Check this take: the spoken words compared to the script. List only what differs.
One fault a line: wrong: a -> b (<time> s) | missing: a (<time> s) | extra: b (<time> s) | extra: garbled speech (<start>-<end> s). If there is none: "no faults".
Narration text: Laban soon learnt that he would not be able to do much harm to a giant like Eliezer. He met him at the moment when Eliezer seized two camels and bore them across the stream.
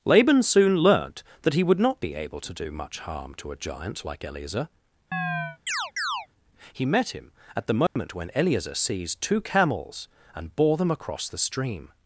no faults